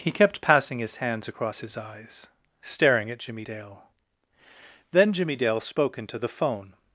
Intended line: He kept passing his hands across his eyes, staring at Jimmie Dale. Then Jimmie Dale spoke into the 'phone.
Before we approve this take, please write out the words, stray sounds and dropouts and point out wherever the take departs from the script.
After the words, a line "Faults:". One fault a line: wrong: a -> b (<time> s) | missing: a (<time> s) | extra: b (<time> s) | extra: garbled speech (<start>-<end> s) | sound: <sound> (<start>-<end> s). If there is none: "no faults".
He kept passing his hands across his eyes, staring at Jimmie Dale. Then Jimmie Dale spoke into the 'phone.
Faults:
no faults